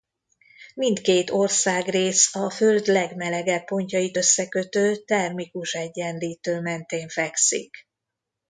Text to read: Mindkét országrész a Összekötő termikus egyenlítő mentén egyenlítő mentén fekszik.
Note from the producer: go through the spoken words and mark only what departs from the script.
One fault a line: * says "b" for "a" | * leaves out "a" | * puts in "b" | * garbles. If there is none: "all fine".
* puts in "Föld legmelegebb pontjait"
* leaves out "egyenlítő mentén"